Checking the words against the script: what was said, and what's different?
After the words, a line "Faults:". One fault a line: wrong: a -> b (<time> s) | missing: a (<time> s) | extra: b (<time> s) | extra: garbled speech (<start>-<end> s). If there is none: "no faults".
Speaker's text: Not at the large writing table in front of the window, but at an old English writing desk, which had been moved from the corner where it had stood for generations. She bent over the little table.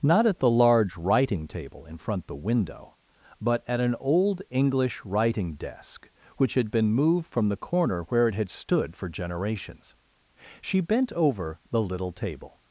Not at the large writing table in front the window, but at an old English writing desk, which had been moved from the corner where it had stood for generations. She bent over the little table.
Faults:
missing: of (2.2 s)